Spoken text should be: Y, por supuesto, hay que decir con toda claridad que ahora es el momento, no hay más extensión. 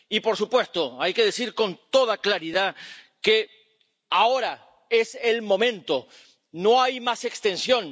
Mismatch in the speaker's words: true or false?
false